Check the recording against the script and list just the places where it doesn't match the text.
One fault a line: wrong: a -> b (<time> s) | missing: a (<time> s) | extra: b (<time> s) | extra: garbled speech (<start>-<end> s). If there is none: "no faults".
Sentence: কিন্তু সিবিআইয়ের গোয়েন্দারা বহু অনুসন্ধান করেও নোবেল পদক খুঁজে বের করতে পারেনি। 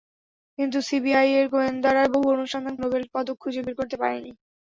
missing: করেও (2.8 s)